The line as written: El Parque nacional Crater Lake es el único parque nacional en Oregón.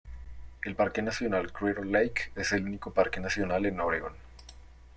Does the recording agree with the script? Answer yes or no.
yes